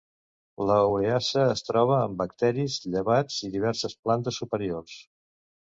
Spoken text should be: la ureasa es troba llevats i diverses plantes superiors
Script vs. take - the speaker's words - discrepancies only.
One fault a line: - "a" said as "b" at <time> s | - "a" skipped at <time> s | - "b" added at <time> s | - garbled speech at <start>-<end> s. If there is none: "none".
- "en bacteris" added at 2.0 s